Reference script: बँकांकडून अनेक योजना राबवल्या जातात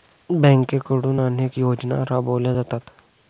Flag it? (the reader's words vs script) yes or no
no